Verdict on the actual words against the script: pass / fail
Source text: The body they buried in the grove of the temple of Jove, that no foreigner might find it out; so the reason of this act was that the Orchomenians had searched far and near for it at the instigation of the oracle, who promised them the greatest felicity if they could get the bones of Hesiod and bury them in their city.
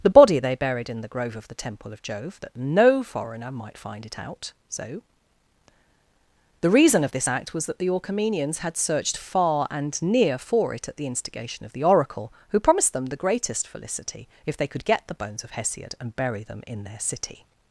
pass